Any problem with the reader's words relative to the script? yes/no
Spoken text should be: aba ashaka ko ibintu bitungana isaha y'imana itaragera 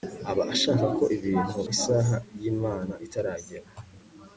yes